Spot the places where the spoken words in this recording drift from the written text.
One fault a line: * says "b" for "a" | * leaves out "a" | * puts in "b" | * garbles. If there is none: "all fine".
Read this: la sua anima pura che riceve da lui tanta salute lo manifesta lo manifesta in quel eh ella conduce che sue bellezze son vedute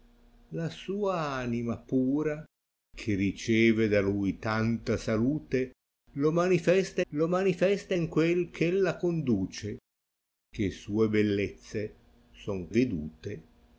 all fine